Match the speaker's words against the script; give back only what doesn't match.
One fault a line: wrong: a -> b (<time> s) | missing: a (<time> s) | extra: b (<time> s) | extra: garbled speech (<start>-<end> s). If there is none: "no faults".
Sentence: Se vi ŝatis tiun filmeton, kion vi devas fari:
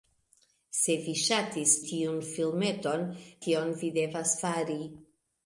no faults